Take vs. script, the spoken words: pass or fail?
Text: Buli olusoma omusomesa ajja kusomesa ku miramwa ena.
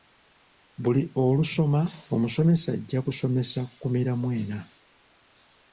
pass